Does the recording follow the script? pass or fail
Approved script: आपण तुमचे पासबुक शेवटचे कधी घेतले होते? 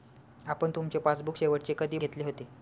pass